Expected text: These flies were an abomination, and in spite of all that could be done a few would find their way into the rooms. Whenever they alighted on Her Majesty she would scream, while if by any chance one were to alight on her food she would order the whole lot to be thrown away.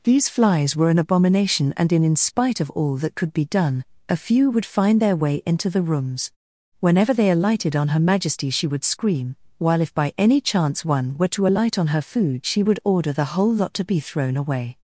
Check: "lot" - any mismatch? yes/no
no